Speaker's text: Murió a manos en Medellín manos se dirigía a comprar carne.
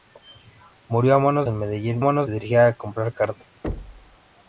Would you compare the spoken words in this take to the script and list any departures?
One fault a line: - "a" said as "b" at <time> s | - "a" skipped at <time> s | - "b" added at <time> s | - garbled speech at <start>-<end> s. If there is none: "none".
none